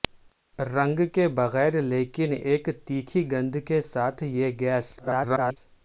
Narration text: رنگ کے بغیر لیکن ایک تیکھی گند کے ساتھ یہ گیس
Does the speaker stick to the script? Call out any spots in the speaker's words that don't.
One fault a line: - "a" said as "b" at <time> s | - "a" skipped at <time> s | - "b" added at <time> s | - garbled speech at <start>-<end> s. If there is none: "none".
- garbled speech at 5.0-5.6 s